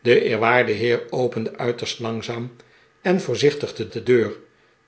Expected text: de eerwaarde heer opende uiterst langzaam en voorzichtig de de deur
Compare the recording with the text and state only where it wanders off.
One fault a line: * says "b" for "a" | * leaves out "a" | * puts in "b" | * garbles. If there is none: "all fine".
all fine